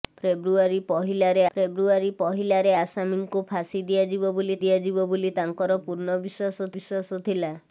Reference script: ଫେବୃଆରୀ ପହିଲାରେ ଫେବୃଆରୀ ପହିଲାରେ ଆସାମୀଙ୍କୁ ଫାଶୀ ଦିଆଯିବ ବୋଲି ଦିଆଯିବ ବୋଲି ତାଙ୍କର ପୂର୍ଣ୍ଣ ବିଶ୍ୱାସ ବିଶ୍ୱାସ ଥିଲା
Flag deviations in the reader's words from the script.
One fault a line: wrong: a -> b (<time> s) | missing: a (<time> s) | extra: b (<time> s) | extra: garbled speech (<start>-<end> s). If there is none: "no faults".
no faults